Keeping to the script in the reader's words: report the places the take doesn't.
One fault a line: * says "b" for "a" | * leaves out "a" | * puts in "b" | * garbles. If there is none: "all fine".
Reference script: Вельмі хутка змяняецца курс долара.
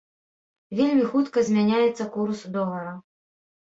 all fine